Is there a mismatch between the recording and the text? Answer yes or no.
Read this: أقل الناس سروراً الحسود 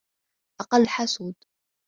yes